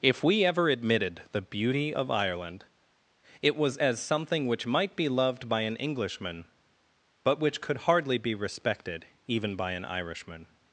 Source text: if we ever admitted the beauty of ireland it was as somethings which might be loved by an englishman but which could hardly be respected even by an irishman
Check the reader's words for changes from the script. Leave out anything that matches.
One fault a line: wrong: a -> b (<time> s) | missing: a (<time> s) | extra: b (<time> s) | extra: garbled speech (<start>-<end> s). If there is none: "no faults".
wrong: somethings -> something (4.0 s)